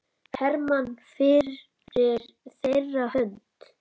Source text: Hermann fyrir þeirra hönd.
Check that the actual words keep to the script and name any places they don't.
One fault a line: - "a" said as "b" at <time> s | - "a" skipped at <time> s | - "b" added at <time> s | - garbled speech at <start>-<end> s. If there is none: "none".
none